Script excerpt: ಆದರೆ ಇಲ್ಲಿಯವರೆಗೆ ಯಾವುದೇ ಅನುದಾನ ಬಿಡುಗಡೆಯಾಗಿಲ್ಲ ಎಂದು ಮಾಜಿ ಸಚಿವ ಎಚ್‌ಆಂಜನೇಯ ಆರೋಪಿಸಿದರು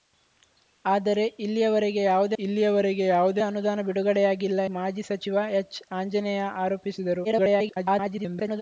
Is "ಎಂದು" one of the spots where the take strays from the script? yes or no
yes